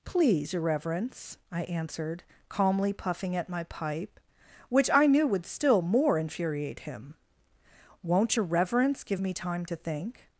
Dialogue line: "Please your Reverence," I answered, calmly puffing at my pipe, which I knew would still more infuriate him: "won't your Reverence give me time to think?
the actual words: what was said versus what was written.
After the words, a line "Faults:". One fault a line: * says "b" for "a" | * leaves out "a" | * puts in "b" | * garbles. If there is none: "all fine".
"Please your Reverence," I answered, calmly puffing at my pipe, which I knew would still more infuriate him: "won't your Reverence give me time to think?
Faults:
all fine